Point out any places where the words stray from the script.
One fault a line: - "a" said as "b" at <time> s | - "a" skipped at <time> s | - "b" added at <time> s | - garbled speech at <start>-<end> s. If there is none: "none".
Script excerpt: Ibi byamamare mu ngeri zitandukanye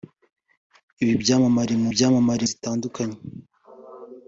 - "ngeri" said as "byamamare" at 1.9 s